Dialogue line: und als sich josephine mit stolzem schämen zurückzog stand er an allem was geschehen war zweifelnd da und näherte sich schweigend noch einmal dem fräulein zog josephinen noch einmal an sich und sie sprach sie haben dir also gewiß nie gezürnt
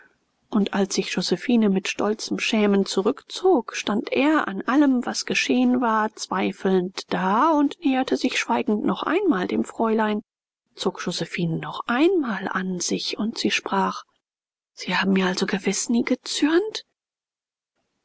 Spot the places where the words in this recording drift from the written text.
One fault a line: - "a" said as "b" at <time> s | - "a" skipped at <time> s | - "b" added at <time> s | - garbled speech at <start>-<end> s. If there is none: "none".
- "dir" said as "mir" at 15.1 s